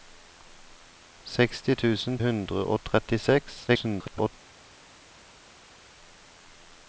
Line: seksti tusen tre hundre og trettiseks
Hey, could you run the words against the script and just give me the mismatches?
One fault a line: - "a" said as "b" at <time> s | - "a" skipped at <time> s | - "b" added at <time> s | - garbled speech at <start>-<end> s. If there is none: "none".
- "tre" skipped at 2.2 s
- garbled speech at 3.7-4.3 s